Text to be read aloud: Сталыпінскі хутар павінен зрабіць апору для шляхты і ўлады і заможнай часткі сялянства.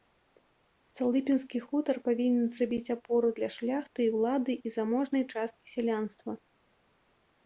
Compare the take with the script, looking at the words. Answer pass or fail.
pass